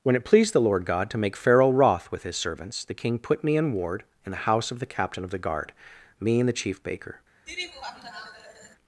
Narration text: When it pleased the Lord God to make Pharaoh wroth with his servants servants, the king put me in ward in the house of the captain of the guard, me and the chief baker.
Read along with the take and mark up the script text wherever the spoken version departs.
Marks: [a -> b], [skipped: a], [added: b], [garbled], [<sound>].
When it pleased the Lord God to make Pharaoh wroth with his servants [skipped: servants,] the king put me in ward in the house of the captain of the guard, me and the chief baker. [laugh]